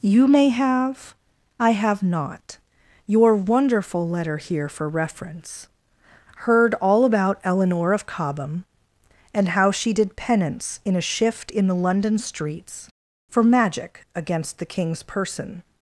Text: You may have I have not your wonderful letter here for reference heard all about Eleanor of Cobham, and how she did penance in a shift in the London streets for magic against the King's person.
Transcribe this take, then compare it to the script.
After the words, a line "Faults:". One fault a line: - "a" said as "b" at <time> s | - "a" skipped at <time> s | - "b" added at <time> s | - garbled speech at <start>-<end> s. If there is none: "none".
You may have I have not your wonderful letter here for reference heard all about Eleanor of Cobham, and how she did penance in a shift in the London streets for magic against the King's person.
Faults:
none